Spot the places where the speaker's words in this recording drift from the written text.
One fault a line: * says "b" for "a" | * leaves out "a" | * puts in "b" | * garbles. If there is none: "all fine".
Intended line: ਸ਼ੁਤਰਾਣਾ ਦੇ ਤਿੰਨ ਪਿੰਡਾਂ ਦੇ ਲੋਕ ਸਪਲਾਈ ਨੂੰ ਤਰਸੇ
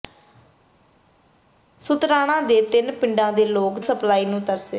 all fine